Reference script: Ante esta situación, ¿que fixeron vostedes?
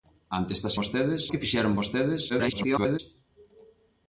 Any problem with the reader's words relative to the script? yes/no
yes